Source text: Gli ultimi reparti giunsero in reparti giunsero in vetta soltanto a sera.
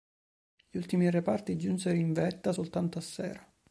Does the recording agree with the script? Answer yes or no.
no